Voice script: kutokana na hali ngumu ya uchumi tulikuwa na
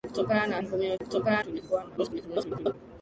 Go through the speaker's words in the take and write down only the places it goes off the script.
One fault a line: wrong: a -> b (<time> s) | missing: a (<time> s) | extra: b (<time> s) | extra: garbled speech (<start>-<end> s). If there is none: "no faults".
missing: hali (0.6 s)
wrong: uchumi -> kutokana (1.0 s)
extra: garbled speech (2.0-2.7 s)